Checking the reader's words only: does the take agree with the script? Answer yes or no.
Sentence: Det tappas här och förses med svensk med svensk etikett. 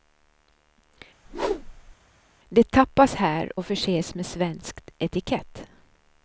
no